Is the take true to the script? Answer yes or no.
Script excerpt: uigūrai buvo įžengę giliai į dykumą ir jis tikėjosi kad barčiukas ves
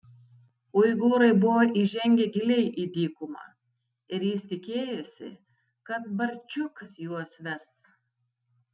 no